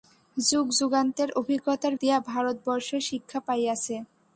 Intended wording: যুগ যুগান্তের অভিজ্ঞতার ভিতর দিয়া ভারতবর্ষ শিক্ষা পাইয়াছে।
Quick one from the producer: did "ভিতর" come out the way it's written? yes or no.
no